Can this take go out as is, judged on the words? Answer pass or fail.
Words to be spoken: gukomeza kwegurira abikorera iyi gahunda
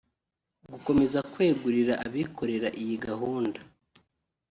pass